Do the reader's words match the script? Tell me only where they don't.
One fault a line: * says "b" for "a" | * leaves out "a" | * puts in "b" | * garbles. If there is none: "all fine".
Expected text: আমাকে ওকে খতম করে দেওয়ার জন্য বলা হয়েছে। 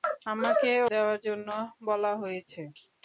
* leaves out "ওকে খতম করে"